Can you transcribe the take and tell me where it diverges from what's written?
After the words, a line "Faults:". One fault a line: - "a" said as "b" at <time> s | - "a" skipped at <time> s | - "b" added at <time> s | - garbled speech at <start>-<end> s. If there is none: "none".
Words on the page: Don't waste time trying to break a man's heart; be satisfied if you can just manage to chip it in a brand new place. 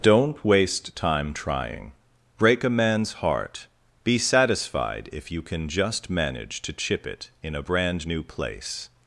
Don't waste time trying break a man's heart; be satisfied if you can just manage to chip it in a brand new place.
Faults:
- "to" skipped at 1.9 s